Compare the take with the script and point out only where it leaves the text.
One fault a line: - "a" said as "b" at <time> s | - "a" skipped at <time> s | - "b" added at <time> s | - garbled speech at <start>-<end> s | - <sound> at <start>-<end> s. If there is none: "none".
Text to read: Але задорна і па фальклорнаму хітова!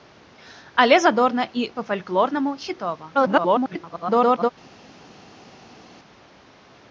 - garbled speech at 3.1-4.5 s